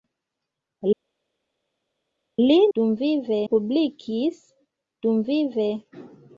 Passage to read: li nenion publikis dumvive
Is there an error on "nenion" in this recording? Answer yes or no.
yes